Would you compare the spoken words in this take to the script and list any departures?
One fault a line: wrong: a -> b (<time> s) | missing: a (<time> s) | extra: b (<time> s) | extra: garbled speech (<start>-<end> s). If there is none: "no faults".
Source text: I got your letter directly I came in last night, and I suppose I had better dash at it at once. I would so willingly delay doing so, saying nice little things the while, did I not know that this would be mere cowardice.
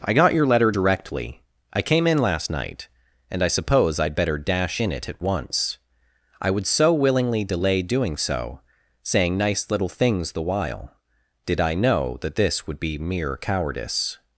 wrong: at -> in (4.8 s)
missing: not (11.7 s)